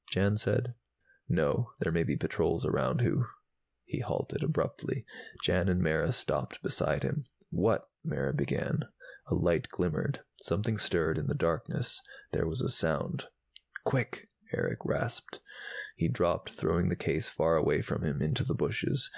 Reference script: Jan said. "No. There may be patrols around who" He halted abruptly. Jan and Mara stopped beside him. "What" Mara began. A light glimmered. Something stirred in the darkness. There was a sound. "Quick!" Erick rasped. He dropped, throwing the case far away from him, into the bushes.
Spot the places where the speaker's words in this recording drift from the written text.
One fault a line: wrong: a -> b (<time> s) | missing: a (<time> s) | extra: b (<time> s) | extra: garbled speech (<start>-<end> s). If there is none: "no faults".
no faults